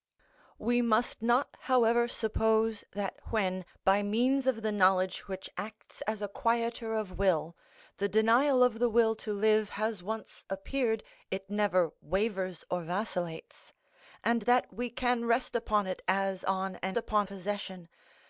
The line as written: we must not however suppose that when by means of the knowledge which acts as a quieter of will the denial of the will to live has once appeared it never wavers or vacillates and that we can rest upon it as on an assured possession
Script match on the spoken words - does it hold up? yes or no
no